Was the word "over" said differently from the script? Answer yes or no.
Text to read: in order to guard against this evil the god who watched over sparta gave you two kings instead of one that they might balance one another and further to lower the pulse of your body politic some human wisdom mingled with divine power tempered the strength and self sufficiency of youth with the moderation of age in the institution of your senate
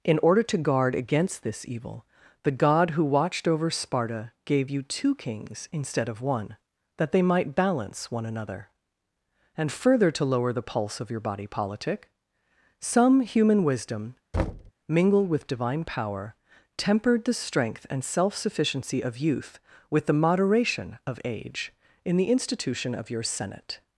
no